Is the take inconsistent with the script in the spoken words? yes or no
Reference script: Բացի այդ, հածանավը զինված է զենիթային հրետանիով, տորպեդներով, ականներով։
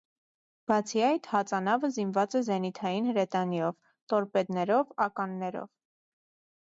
no